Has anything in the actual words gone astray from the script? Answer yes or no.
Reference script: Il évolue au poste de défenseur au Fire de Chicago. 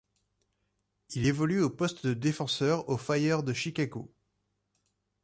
no